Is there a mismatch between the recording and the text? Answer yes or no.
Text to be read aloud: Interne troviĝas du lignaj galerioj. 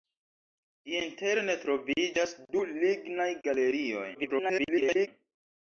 yes